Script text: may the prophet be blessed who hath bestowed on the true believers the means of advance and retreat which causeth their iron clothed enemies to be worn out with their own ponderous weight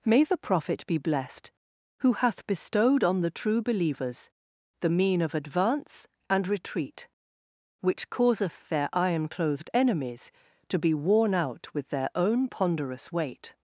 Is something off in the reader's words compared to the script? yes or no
yes